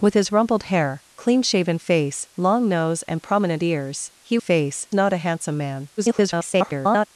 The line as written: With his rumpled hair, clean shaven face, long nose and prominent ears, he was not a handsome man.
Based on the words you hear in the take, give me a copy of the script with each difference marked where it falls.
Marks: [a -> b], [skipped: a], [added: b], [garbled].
With his rumpled hair, clean shaven face, long nose and prominent ears, he [was -> face] not a handsome man. [garbled]